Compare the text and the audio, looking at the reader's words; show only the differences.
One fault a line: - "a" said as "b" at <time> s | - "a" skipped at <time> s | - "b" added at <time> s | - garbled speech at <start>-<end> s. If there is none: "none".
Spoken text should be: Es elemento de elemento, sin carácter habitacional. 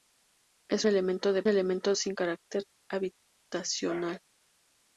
none